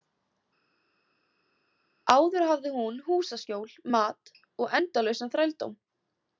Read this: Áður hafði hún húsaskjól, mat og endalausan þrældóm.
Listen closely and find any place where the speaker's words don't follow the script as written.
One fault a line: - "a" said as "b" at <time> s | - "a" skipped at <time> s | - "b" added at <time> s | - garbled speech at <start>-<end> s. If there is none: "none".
none